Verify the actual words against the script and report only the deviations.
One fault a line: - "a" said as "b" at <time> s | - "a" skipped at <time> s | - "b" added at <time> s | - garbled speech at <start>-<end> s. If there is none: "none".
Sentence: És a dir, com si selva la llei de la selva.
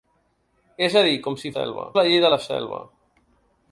none